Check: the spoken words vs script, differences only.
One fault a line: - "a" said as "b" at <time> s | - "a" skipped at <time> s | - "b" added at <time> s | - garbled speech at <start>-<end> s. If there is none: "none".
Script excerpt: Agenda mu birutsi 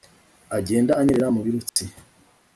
- "anyerera" added at 1.0 s